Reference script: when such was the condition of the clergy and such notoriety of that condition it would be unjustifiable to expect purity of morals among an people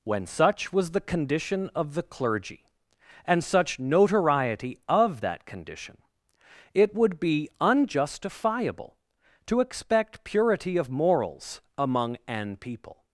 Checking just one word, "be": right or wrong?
right